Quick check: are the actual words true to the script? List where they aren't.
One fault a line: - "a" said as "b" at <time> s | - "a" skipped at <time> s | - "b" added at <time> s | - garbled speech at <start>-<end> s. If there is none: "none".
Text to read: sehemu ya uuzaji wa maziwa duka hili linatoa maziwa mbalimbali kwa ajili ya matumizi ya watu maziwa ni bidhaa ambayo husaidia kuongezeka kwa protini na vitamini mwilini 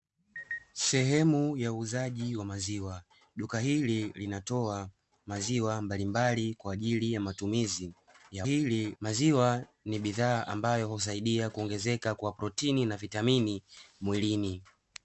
- "watu" said as "hili" at 8.4 s